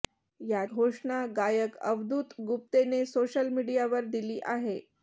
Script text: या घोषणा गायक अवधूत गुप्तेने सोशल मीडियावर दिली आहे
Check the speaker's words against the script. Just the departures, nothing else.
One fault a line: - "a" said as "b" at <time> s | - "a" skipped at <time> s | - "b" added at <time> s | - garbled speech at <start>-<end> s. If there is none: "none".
none